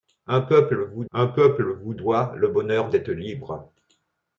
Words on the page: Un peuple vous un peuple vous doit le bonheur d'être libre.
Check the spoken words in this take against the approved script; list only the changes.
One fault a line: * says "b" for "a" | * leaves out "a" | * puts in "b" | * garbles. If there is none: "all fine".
all fine